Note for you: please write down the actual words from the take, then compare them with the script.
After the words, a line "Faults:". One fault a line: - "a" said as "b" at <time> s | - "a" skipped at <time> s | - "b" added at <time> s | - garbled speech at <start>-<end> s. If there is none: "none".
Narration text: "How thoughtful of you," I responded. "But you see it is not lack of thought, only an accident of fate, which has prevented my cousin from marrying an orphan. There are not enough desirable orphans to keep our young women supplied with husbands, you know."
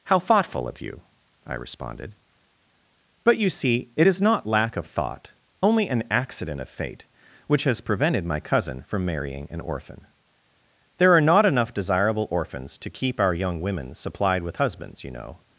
"How thoughtful of you," I responded. "But you see it is not lack of thought, only an accident of fate, which has prevented my cousin from marrying an orphan. There are not enough desirable orphans to keep our young women supplied with husbands, you know."
Faults:
none